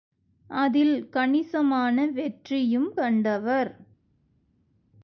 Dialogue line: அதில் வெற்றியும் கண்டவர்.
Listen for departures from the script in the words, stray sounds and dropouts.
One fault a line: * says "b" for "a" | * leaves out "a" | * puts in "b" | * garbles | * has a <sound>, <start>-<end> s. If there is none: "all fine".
* puts in "கணிசமான"